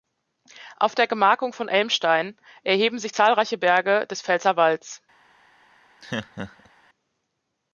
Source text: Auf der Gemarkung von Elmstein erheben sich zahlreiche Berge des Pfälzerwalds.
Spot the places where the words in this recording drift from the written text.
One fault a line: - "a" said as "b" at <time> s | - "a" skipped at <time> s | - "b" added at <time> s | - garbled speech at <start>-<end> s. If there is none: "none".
none